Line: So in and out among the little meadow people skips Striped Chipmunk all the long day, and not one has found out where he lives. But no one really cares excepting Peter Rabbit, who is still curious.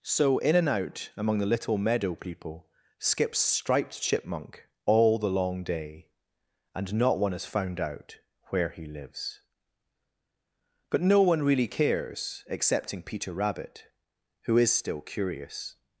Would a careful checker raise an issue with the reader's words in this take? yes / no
no